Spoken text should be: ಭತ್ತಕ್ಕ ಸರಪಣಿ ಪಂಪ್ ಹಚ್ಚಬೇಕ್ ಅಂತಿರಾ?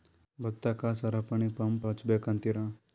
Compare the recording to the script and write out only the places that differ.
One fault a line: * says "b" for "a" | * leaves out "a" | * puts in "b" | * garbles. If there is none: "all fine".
all fine